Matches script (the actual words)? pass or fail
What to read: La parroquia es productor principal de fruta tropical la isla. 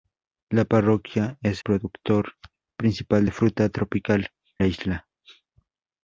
pass